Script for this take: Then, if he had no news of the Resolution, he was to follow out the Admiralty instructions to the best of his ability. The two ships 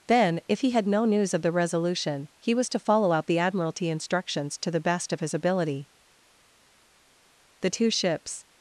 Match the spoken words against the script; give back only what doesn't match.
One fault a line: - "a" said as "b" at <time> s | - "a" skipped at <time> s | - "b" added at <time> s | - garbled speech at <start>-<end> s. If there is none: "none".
none